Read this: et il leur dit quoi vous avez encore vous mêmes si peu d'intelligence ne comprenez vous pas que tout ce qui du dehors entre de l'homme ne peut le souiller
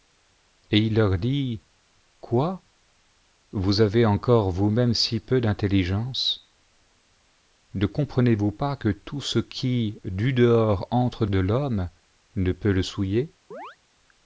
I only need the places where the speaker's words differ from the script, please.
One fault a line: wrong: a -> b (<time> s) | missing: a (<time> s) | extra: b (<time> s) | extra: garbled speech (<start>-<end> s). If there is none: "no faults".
no faults